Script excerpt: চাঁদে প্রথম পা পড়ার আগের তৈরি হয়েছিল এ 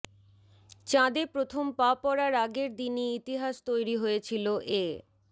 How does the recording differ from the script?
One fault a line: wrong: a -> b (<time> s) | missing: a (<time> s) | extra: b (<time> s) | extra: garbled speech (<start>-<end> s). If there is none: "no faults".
extra: দিনই ইতিহাস (2.8 s)